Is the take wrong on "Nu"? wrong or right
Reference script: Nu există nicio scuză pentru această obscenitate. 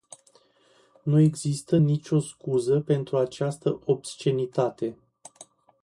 right